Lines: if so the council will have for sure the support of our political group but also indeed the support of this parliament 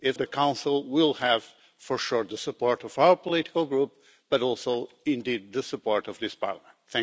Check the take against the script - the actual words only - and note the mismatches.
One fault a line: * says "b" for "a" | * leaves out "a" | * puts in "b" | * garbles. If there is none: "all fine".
* leaves out "so"